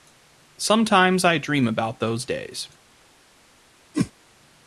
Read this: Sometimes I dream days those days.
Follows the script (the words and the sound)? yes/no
no